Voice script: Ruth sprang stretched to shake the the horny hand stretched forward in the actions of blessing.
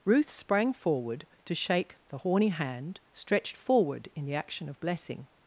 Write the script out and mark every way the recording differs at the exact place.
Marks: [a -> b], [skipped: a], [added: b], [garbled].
Ruth sprang [stretched -> forward] to shake the [skipped: the] horny hand stretched forward in the [actions -> action] of blessing.